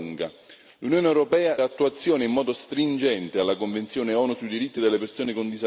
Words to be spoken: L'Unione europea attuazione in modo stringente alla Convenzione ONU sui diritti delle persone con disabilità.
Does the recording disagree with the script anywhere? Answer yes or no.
no